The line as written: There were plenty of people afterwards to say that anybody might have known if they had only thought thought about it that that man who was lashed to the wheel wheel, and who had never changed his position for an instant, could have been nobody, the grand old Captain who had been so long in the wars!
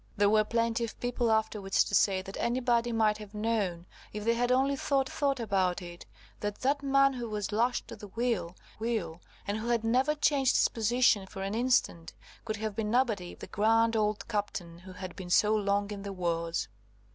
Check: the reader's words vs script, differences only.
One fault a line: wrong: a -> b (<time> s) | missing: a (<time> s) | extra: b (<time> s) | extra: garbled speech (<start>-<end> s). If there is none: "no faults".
no faults